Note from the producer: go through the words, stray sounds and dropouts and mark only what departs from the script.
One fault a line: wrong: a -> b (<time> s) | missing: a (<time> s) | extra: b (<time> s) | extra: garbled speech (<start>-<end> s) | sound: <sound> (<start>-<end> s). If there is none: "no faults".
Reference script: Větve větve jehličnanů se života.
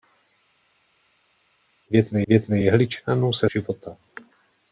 no faults